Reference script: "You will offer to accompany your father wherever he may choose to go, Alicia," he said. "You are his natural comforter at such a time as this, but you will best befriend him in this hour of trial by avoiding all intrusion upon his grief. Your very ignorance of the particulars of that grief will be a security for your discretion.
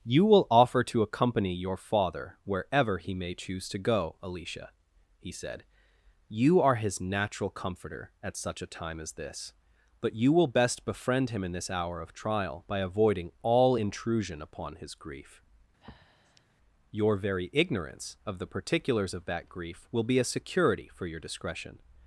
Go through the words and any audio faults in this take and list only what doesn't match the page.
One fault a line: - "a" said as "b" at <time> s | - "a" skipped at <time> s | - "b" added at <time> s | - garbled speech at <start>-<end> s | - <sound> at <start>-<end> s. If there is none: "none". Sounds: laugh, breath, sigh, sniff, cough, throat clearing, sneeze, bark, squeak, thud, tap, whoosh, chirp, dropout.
- breath at 15.8-16.5 s